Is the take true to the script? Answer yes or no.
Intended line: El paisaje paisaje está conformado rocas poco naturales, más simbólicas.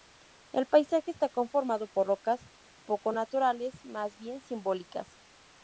no